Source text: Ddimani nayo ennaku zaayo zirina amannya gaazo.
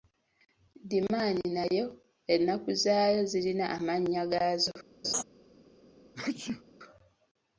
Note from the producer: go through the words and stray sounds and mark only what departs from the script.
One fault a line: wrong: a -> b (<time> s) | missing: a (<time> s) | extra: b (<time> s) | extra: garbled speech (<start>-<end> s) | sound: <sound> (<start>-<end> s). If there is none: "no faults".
sound: laugh (5.0-5.2 s)
sound: sneeze (6.1-6.6 s)